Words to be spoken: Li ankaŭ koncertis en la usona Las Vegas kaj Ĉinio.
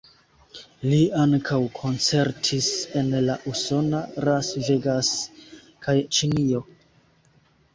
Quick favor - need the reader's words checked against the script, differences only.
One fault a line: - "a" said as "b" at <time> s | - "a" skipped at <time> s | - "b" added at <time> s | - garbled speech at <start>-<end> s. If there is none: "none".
none